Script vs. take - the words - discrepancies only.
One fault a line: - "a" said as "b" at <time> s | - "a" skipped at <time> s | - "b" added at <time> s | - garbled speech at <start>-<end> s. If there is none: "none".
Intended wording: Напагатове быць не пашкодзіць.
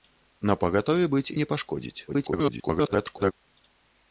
- garbled speech at 2.1-3.3 s